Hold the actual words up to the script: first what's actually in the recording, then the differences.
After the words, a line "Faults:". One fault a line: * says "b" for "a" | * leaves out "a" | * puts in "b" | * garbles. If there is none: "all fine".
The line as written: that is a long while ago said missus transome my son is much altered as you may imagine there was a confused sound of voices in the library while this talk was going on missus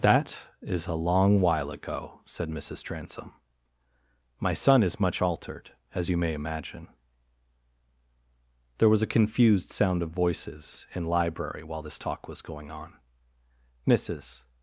that is a long while ago said missus transome my son is much altered as you may imagine there was a confused sound of voices in library while this talk was going on missus
Faults:
* leaves out "the"